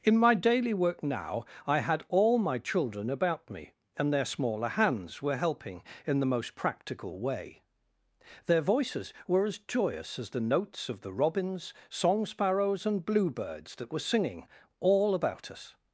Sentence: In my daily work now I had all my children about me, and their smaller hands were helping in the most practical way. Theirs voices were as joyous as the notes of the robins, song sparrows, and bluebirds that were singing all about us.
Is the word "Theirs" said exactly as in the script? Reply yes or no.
no